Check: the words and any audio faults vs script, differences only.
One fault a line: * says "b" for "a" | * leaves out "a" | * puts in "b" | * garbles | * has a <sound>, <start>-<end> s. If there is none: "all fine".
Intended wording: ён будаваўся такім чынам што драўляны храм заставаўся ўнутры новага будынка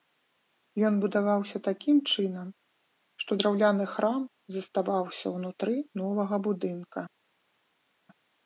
all fine